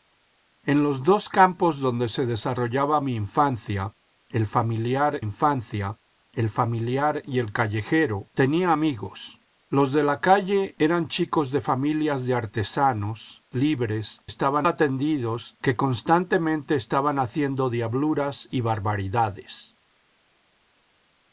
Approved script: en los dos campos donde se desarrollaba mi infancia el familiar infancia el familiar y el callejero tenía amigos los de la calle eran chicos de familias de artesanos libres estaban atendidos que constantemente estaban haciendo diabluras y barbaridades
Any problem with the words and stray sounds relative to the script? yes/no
no